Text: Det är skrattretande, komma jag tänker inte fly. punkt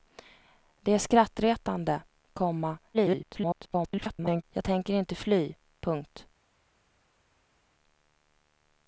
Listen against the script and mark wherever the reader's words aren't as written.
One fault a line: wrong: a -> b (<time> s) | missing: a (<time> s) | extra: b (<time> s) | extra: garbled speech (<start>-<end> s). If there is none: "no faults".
extra: garbled speech (2.9-4.4 s)